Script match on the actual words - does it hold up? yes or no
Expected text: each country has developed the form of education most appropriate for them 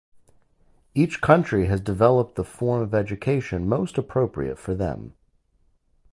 yes